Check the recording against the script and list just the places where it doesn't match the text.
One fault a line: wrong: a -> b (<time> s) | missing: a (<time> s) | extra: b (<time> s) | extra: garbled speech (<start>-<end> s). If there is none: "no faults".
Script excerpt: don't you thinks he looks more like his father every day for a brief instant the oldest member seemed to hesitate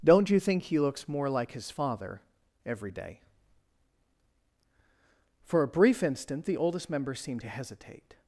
wrong: thinks -> think (0.4 s)